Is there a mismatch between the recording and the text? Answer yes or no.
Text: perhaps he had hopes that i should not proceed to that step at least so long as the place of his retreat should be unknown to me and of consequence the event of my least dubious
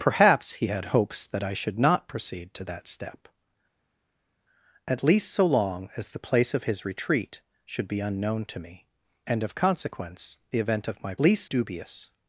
no